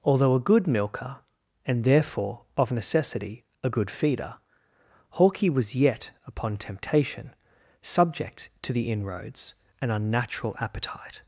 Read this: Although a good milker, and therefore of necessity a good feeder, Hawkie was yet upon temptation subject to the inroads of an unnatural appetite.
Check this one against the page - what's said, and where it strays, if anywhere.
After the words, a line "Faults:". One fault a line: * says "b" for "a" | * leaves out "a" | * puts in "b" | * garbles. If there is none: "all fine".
Although a good milker, and therefore of necessity a good feeder, Hawkie was yet upon temptation subject to the inroads an unnatural appetite.
Faults:
* leaves out "of"